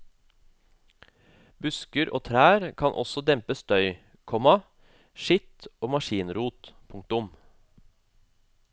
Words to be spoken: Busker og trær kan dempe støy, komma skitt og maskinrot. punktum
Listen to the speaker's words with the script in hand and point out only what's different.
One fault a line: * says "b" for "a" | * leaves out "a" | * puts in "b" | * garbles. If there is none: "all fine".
* puts in "også"